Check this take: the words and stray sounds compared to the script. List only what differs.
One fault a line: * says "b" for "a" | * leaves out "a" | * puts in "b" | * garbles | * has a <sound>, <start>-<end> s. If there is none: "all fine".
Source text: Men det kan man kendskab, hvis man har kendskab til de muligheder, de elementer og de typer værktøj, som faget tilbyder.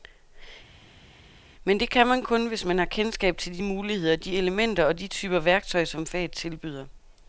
* says "kun" for "kendskab"